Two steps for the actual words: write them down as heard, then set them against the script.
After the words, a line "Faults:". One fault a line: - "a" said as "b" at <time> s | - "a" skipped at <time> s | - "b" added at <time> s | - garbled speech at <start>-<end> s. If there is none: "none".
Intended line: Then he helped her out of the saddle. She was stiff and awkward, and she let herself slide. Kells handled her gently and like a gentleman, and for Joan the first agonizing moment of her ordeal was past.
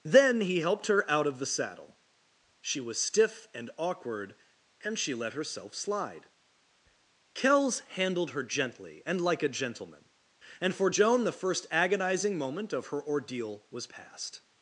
Then he helped her out of the saddle. She was stiff and awkward, and she let herself slide. Kells handled her gently and like a gentleman, and for Joan the first agonizing moment of her ordeal was past.
Faults:
none